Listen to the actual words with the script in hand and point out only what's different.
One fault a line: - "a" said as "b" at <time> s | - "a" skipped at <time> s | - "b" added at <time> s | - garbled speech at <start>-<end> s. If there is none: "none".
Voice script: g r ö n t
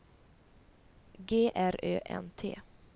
none